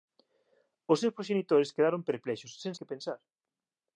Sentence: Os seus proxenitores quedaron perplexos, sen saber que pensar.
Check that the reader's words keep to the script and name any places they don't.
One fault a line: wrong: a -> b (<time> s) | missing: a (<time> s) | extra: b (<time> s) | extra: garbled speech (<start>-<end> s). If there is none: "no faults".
missing: saber (2.7 s)